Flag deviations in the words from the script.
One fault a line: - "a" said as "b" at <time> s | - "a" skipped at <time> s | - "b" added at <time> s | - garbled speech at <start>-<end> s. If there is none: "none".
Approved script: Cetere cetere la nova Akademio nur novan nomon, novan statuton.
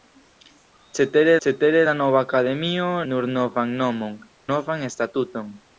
none